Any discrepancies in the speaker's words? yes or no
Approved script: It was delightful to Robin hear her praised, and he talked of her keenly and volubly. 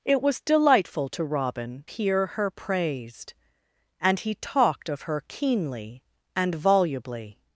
no